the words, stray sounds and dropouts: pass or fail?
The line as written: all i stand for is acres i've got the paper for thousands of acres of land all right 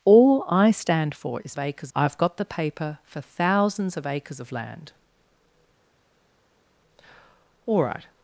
pass